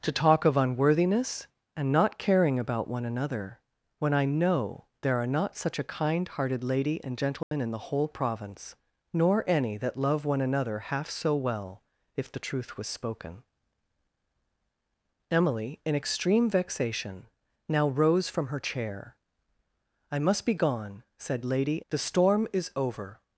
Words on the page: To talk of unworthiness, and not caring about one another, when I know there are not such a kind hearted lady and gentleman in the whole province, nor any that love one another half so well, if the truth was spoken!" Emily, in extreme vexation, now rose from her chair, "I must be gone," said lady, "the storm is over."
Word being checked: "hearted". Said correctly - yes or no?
yes